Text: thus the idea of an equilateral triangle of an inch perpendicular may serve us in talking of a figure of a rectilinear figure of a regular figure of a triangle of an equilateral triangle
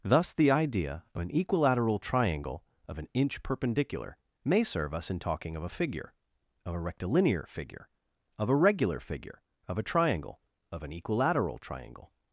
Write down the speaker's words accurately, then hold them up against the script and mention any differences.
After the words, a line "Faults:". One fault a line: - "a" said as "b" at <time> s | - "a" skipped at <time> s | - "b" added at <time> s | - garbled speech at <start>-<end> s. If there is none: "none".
thus the idea of an equilateral triangle of an inch perpendicular may serve us in talking of a figure of a rectilinear figure of a regular figure of a triangle of an equilateral triangle
Faults:
none